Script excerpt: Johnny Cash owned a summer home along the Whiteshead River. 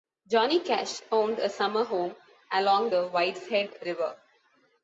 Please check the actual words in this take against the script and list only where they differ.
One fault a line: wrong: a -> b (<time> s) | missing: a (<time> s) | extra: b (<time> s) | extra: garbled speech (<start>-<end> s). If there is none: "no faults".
no faults